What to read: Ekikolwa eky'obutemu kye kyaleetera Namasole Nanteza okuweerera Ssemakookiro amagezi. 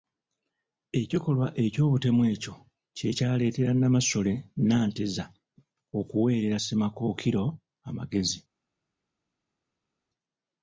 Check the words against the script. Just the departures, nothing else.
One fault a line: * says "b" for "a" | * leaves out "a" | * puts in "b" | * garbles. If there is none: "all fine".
* puts in "ekyo"